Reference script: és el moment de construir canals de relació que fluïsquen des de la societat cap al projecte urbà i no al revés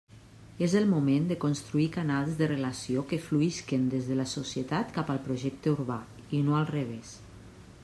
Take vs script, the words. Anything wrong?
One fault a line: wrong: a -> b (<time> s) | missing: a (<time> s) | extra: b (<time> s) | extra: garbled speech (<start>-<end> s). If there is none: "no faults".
no faults